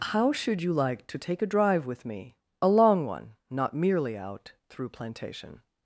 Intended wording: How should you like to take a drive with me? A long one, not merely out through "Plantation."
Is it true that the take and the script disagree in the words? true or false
false